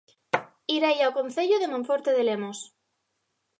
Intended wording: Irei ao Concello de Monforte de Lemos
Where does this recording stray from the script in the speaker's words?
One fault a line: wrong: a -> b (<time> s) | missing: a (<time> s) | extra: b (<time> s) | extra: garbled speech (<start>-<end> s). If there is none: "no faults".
no faults